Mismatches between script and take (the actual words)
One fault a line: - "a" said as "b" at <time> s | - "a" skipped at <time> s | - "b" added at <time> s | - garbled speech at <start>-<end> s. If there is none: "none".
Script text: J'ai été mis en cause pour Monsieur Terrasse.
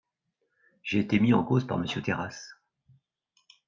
- "pour" said as "par" at 1.7 s